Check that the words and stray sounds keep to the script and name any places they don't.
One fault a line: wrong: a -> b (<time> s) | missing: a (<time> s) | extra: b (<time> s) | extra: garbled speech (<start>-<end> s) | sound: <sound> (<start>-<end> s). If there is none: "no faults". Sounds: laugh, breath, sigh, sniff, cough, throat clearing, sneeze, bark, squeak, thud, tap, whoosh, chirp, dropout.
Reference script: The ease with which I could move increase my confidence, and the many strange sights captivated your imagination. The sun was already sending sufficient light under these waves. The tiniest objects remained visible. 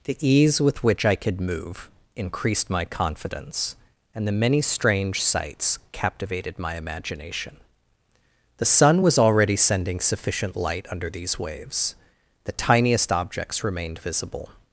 wrong: increase -> increased (2.1 s)
wrong: your -> my (6.6 s)